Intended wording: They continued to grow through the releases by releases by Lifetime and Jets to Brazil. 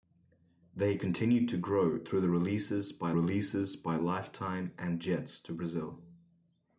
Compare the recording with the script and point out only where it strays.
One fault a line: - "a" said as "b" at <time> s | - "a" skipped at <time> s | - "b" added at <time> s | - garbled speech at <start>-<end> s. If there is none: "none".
none